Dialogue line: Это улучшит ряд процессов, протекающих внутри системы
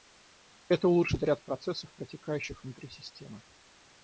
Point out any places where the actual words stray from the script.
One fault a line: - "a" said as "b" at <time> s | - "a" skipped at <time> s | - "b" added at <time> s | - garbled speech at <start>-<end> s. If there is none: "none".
none